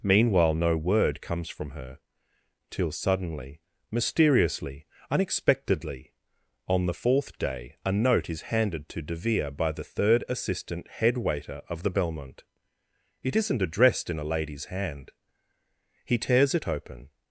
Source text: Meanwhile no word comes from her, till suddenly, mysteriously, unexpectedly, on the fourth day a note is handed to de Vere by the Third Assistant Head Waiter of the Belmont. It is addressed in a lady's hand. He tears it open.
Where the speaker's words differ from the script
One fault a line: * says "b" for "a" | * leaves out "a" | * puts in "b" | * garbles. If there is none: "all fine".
* says "isn't" for "is"